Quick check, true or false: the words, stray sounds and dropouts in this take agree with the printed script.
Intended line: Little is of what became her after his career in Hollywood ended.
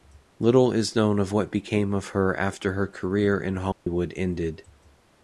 false